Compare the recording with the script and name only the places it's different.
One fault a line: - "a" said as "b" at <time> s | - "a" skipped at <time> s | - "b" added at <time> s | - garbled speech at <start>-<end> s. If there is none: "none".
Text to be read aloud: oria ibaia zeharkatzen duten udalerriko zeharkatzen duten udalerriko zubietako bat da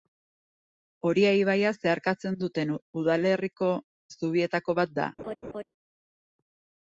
- "zeharkatzen duten udalerriko" skipped at 3.7 s